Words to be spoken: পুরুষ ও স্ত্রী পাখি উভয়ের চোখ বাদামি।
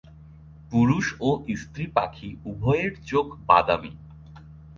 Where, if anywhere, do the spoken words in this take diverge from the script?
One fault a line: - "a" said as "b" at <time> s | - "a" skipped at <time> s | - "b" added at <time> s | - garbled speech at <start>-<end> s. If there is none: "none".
none